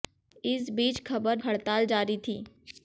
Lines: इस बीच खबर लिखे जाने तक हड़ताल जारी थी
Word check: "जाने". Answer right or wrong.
wrong